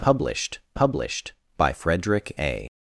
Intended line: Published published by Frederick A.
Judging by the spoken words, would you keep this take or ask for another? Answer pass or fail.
pass